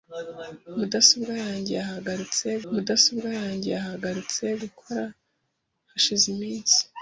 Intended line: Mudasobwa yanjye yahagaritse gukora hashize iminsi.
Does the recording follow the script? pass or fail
fail